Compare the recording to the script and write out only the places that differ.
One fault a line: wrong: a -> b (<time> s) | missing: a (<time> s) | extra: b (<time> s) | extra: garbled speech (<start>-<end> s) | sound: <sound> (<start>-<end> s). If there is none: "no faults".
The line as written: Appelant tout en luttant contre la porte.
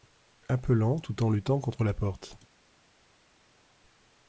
no faults